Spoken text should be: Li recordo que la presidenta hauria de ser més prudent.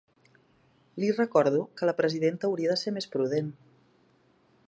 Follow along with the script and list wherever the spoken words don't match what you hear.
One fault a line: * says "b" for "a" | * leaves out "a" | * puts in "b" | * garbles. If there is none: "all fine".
all fine